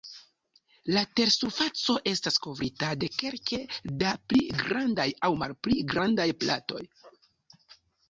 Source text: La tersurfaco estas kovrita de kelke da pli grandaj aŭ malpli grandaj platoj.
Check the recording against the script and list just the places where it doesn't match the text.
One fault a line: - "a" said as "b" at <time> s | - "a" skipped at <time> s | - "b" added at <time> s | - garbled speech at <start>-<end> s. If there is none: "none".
none